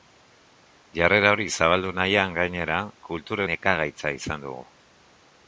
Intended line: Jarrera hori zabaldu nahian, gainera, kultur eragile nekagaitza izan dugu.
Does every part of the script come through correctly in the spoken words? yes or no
no